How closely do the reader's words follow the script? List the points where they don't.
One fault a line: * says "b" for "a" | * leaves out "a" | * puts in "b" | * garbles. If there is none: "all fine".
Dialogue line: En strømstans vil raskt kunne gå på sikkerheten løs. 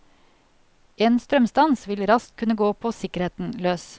all fine